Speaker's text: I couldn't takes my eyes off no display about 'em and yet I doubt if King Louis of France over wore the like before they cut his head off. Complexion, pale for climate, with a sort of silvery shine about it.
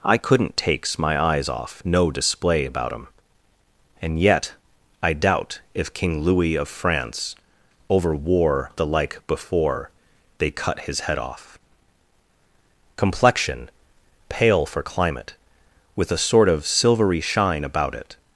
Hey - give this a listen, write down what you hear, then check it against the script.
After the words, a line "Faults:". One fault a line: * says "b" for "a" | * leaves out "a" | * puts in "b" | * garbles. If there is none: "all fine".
I couldn't takes my eyes off no display about 'em and yet I doubt if King Louis of France over wore the like before they cut his head off. Complexion, pale for climate, with a sort of silvery shine about it.
Faults:
all fine